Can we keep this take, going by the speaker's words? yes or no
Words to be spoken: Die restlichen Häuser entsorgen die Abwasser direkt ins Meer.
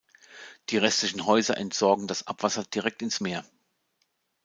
no